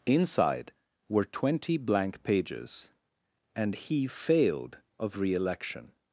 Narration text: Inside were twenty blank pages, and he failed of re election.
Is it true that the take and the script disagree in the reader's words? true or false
false